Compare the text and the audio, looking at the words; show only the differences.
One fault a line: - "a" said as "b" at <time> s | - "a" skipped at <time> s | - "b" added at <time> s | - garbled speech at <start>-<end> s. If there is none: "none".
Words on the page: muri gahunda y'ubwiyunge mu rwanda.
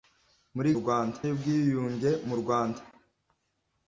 - "gahunda" said as "rwanda" at 0.8 s